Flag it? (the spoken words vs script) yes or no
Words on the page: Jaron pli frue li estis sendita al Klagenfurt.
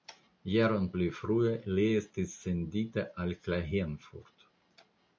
no